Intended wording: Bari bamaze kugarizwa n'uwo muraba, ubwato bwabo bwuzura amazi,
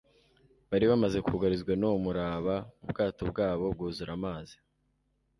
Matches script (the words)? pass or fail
pass